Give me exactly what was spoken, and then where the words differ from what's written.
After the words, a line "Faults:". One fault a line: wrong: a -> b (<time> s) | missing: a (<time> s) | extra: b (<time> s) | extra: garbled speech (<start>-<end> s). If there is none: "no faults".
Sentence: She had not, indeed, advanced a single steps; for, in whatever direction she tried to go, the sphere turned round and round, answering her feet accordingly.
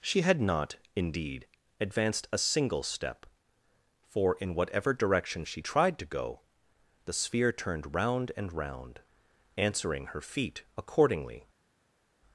She had not, indeed, advanced a single step; for, in whatever direction she tried to go, the sphere turned round and round, answering her feet accordingly.
Faults:
wrong: steps -> step (2.8 s)